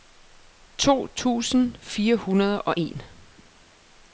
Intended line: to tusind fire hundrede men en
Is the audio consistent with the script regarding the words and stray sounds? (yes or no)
no